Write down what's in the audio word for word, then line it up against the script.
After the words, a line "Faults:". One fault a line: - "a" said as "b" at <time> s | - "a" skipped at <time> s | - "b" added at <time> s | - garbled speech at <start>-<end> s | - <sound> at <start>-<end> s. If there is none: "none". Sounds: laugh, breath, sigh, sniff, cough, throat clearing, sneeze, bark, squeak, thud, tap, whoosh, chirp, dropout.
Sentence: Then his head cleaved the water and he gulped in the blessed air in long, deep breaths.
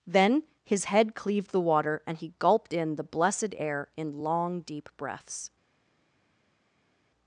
Then his head cleaved the water and he gulped in the blessed air in long, deep breaths.
Faults:
none